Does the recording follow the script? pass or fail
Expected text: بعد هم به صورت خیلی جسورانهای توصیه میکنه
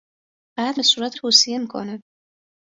fail